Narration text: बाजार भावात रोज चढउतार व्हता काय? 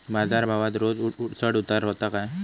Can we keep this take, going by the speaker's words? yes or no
yes